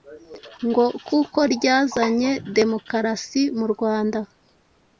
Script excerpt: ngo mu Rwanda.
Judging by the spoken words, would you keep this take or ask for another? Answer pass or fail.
fail